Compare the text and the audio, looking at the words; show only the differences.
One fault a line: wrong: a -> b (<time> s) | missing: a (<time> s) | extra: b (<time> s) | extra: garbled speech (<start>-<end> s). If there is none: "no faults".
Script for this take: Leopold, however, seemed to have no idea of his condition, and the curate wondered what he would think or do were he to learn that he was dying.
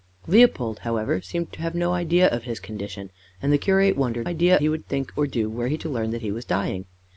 wrong: what -> idea (4.2 s)